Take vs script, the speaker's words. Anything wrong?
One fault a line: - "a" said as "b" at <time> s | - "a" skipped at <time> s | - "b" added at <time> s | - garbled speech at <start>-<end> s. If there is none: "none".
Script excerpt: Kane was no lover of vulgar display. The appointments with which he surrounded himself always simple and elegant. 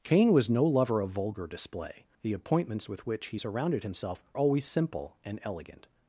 none